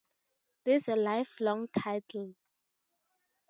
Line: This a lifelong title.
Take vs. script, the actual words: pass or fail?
pass